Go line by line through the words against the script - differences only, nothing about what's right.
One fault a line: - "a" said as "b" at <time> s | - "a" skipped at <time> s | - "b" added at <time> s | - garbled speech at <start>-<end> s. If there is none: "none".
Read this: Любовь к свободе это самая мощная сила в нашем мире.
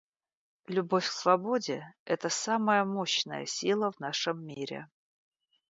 none